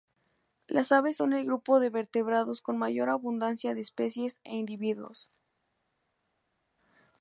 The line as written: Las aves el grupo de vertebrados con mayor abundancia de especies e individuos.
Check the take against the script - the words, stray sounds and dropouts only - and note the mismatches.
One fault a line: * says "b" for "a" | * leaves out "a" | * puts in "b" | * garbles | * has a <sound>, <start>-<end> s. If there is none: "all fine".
* puts in "son"